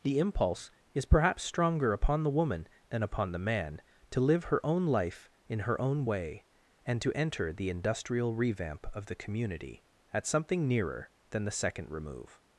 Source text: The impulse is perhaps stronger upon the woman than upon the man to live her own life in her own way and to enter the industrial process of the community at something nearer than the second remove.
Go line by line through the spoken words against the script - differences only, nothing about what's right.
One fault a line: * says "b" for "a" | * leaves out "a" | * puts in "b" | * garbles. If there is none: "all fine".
* says "revamp" for "process"